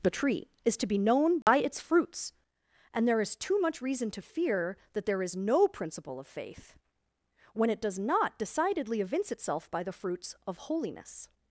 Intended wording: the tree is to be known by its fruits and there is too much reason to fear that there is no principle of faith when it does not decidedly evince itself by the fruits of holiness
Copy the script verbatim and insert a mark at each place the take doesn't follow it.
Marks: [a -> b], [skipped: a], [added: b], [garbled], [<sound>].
the tree is to be known by [dropout] its fruits and there is too much reason to fear that there is no principle of faith when it does not decidedly evince itself by the fruits of holiness